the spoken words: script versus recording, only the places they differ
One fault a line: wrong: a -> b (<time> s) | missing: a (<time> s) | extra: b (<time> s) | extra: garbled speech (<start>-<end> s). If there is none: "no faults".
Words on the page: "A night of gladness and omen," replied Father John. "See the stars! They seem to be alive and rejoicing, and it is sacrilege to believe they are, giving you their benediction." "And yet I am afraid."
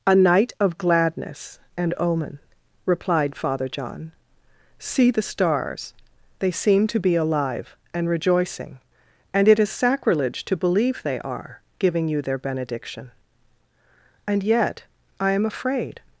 no faults